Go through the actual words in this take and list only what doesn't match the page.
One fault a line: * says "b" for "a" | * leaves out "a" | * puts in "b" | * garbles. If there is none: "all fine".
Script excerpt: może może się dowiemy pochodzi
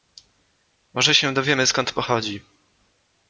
* leaves out "może"
* puts in "skąd"